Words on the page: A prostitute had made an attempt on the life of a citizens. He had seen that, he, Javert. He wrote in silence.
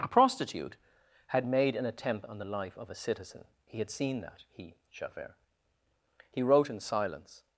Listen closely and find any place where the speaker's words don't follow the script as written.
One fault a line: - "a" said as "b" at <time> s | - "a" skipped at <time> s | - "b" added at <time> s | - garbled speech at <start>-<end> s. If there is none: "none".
- "citizens" said as "citizen" at 2.9 s